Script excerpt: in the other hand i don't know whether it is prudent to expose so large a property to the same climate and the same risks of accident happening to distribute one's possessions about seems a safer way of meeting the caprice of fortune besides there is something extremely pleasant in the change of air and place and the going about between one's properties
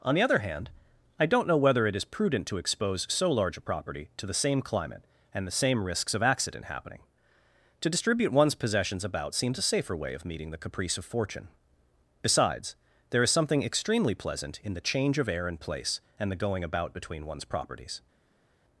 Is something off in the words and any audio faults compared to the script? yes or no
yes